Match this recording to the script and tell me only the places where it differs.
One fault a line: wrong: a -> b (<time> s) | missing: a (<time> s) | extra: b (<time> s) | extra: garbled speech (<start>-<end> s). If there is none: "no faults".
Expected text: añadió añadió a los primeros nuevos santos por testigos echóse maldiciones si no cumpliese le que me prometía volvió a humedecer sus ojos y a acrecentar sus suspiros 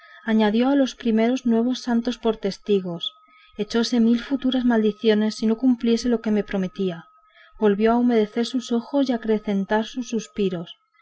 missing: añadió (0.7 s)
extra: mil futuras (4.0 s)
wrong: le -> lo (6.1 s)